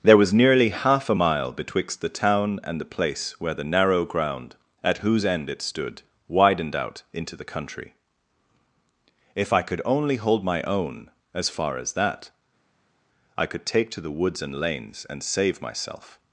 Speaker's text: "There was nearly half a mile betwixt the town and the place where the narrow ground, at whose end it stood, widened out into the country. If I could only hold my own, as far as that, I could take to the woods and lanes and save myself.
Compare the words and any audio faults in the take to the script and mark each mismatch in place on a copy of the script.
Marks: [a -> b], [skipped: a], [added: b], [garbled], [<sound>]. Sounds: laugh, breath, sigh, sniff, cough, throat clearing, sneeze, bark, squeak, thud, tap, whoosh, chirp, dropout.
"There was nearly half a mile betwixt the town and the place where the narrow ground, at whose end it stood, widened out into the country. If I could only hold my own, as far as that, I could take to the woods and lanes and save myself.